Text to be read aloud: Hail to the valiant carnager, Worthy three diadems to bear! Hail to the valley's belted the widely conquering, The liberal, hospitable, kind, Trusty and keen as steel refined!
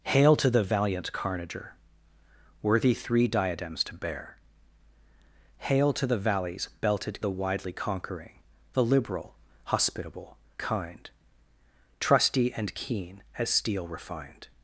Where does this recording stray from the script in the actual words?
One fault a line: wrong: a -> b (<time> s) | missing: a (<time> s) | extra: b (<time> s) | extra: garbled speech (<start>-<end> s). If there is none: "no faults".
no faults